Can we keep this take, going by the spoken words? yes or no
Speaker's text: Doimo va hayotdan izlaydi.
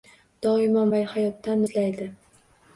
yes